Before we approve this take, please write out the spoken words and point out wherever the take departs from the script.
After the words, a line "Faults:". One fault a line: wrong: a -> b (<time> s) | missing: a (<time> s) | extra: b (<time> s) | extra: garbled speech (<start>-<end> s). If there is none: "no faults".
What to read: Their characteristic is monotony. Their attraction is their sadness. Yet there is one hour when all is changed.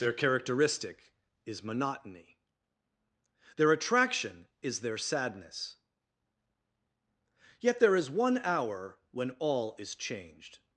Their characteristic is monotony. Their attraction is their sadness. Yet there is one hour when all is changed.
Faults:
no faults